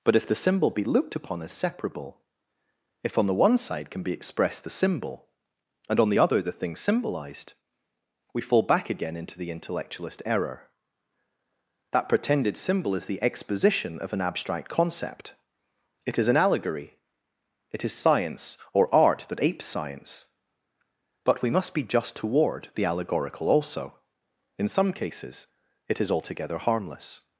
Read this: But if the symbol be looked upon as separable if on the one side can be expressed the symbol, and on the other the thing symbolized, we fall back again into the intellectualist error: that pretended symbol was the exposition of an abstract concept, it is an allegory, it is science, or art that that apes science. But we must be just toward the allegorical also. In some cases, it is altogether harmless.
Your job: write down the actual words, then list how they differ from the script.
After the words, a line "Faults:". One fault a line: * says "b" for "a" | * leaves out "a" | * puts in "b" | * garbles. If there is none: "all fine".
But if the symbol be looked upon as separable if on the one side can be expressed the symbol, and on the other the thing symbolized, we fall back again into the intellectualist error: that pretended symbol is the exposition of an abstract concept, it is an allegory, it is science, or art that apes science. But we must be just toward the allegorical also. In some cases, it is altogether harmless.
Faults:
* says "is" for "was"
* leaves out "that"